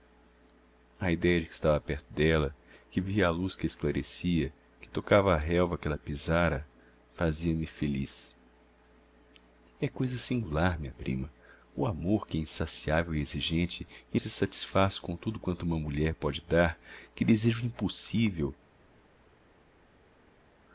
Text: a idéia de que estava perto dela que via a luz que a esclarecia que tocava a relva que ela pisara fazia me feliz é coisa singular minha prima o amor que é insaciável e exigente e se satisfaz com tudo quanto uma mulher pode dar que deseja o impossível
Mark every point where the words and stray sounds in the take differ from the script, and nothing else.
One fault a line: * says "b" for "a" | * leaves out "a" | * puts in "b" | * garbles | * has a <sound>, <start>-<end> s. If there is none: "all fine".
all fine